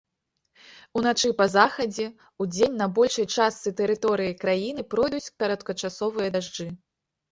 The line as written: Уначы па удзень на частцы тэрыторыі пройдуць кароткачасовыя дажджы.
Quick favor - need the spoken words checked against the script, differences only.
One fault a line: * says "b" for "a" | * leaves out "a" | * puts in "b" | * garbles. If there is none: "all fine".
* puts in "захадзе"
* puts in "большай"
* puts in "краіны"